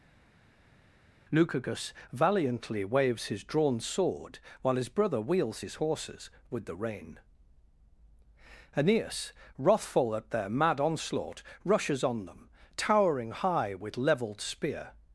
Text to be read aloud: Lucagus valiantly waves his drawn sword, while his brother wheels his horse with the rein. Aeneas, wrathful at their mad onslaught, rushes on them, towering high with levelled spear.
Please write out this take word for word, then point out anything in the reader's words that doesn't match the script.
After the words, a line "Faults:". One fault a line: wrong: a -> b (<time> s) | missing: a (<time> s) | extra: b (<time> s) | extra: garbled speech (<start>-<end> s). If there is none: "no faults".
Lucagus valiantly waves his drawn sword, while his brother wheels his horses with the rein. Aeneas, wrathful at their mad onslaught, rushes on them, towering high with levelled spear.
Faults:
wrong: horse -> horses (5.8 s)